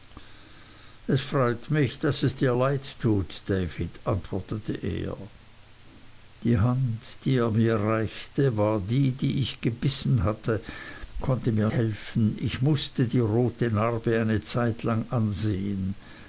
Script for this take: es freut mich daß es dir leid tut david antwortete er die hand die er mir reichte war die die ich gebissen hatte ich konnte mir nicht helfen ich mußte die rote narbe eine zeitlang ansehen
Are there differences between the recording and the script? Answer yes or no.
yes